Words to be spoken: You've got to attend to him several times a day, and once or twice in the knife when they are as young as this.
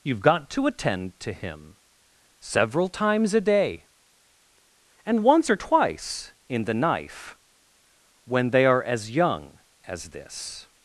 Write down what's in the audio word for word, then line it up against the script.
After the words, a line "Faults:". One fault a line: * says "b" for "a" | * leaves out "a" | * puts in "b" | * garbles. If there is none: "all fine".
You've got to attend to him several times a day, and once or twice in the knife when they are as young as this.
Faults:
all fine